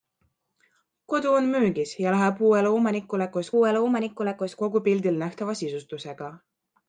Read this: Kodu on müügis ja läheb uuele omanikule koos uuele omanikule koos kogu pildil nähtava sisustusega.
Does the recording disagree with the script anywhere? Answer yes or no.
no